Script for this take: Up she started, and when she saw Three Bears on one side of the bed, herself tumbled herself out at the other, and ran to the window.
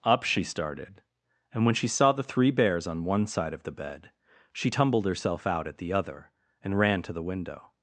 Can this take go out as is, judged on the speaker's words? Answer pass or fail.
fail